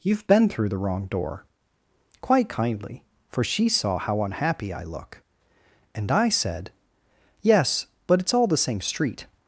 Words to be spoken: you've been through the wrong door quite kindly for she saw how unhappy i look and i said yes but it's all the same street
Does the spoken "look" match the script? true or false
true